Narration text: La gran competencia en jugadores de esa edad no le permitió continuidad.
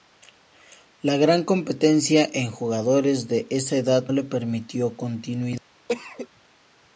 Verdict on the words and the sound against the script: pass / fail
fail